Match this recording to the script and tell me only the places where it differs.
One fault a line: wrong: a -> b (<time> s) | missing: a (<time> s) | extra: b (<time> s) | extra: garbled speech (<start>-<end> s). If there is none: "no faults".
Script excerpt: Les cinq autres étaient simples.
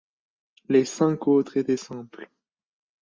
no faults